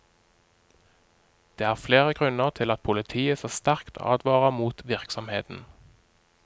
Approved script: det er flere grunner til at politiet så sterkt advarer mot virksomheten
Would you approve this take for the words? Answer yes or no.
yes